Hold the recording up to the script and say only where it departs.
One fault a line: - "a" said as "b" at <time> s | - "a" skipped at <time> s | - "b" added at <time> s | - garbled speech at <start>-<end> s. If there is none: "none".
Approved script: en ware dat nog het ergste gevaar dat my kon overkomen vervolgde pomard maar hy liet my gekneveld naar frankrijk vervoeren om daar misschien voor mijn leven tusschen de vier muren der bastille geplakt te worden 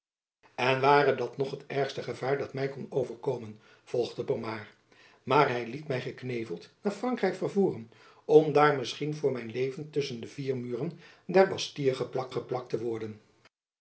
- "geplakt" added at 12.3 s